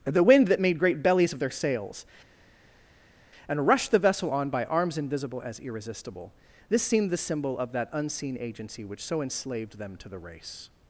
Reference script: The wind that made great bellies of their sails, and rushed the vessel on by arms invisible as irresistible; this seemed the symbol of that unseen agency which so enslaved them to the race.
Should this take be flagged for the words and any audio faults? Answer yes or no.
no